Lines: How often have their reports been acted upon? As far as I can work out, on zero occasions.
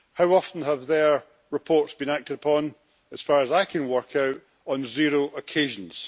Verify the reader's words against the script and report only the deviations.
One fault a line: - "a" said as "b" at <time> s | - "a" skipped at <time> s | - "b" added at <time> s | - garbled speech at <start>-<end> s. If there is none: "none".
none